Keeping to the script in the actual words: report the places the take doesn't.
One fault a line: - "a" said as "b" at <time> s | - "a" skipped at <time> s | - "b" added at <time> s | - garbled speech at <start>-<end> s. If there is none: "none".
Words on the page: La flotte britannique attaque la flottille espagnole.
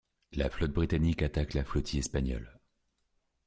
none